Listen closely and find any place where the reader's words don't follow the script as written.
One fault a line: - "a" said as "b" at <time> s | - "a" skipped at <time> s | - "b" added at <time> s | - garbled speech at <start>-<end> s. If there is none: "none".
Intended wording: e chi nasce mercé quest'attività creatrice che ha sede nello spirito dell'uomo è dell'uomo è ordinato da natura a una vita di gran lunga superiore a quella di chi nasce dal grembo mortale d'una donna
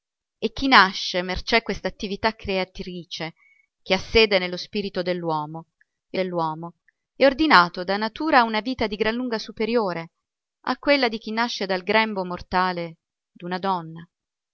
none